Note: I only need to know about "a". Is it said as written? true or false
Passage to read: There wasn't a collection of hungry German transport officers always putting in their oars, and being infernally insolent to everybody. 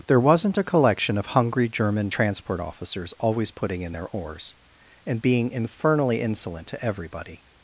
true